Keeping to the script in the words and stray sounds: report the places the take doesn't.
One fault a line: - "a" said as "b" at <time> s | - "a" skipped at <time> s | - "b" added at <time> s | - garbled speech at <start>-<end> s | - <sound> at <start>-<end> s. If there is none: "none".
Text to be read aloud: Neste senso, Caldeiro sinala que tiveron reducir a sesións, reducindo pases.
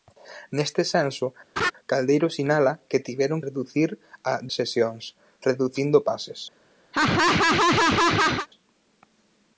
- laugh at 1.6-1.7 s
- laugh at 6.9-8.5 s